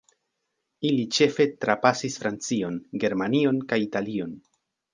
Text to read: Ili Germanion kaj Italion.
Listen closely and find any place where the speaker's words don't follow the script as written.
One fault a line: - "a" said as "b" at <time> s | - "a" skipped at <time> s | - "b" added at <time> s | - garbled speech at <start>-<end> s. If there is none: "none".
- "ĉefe trapasis Francion" added at 1.2 s